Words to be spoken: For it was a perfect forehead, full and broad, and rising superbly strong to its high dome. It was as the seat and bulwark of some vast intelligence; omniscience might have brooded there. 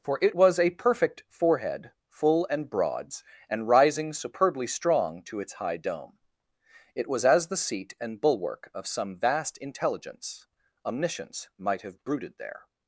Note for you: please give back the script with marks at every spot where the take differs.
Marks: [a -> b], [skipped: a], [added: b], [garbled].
For it was a perfect forehead, full and [broad, -> broads] and rising superbly strong to its high dome. It was as the seat and bulwark of some vast intelligence; omniscience might have brooded there.